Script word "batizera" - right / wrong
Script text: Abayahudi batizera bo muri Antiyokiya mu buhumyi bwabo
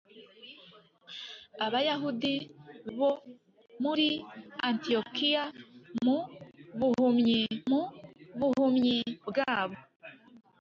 wrong